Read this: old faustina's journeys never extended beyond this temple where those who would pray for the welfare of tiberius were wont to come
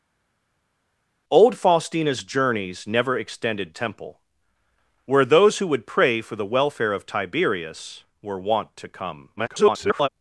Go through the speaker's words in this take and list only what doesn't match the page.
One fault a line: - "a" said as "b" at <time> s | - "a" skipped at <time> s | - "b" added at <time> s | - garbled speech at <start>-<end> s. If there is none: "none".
- "beyond this" skipped at 3.7 s
- garbled speech at 9.4-10.1 s